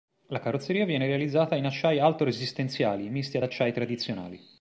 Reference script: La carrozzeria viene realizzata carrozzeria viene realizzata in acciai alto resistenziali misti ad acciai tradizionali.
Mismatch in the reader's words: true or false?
true